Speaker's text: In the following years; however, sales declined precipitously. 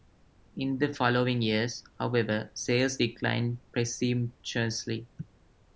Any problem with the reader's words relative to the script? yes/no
no